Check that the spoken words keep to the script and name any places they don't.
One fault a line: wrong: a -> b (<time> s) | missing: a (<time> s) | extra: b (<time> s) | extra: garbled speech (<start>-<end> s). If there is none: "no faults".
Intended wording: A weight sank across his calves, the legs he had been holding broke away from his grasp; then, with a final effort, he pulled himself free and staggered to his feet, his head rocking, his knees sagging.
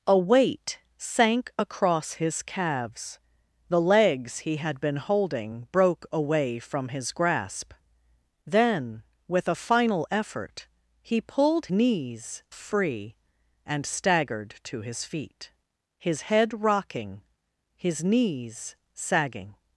wrong: himself -> knees (11.7 s)